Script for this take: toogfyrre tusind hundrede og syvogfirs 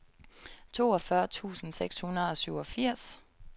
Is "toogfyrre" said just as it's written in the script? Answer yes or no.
yes